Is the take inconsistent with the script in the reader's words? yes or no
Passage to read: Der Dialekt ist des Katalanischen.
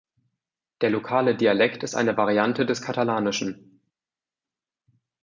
yes